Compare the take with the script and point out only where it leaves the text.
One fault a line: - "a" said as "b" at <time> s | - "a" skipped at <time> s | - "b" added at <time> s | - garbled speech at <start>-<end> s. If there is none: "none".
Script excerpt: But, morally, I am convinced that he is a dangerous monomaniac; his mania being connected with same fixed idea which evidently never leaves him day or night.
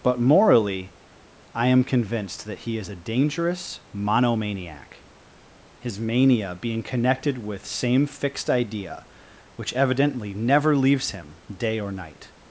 none